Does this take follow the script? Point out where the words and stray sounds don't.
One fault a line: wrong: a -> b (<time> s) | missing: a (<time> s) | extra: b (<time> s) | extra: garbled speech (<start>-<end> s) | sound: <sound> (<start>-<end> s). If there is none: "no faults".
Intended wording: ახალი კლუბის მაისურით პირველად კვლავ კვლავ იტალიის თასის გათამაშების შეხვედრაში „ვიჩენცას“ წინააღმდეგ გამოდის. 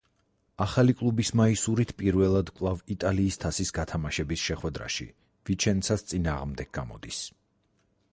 missing: კვლავ (2.8 s)